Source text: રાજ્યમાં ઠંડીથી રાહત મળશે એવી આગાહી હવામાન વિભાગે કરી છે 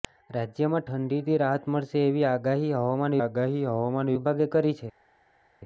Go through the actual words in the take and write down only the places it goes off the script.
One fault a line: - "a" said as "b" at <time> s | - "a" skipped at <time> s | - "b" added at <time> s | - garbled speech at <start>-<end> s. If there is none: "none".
- "આગાહી હવામાન" added at 3.2 s